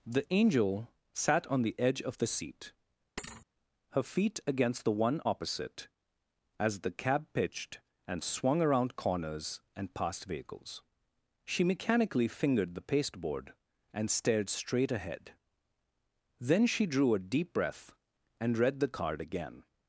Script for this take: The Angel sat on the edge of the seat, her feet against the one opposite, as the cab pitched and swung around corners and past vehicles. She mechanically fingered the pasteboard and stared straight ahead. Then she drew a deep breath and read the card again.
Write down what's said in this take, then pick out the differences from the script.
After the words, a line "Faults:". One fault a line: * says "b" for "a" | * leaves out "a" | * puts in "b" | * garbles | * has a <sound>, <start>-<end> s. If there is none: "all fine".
The Angel sat on the edge of the seat, her feet against the one opposite, as the cab pitched and swung around corners and past vehicles. She mechanically fingered the pasteboard and stared straight ahead. Then she drew a deep breath and read the card again.
Faults:
* has a thud, 3.2-3.5 s